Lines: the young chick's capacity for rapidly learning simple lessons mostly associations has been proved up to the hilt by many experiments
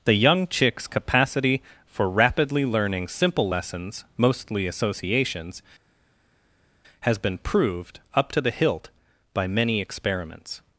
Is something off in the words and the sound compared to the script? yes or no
no